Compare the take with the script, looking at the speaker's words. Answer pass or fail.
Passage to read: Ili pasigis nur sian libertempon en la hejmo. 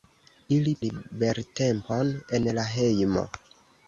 fail